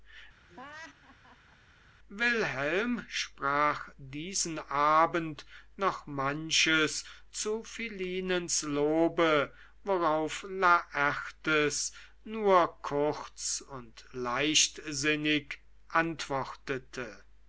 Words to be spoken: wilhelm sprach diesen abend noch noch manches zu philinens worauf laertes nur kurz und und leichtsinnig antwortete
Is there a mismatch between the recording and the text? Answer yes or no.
yes